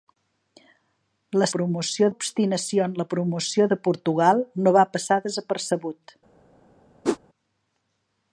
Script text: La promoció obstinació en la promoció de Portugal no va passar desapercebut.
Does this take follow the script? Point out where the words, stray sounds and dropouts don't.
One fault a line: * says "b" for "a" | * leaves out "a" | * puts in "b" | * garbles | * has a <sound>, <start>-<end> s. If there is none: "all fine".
* has a whoosh, 7.0-7.2 s